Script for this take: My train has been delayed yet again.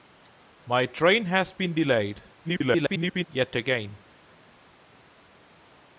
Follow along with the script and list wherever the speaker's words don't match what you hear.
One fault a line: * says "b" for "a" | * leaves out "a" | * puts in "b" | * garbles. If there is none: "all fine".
* garbles